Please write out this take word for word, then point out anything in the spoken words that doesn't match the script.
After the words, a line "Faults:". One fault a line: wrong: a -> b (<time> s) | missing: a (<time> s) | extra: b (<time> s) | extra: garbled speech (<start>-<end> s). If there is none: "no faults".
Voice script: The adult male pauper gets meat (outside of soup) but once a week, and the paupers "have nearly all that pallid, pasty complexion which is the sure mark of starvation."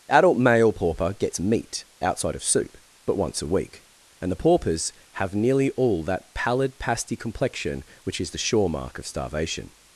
adult male pauper gets meat (outside of soup) but once a week, and the paupers "have nearly all that pallid, pasty complexion which is the sure mark of starvation."
Faults:
missing: The (0.1 s)